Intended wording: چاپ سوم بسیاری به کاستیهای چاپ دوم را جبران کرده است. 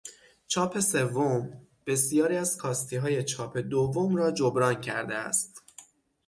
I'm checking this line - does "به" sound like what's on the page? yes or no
no